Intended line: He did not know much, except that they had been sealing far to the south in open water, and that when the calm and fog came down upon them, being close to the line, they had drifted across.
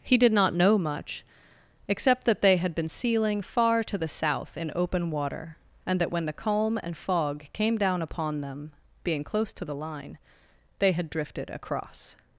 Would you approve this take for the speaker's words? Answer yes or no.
yes